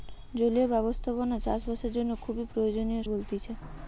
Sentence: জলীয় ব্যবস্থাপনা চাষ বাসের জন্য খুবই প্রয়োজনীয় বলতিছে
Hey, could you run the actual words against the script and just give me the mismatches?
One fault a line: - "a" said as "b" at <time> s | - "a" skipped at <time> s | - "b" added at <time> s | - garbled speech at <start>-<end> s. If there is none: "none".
none